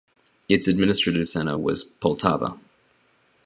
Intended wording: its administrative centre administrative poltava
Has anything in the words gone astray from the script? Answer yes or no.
yes